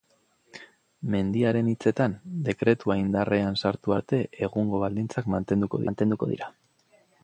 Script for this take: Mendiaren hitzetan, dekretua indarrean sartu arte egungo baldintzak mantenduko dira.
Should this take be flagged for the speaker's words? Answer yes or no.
yes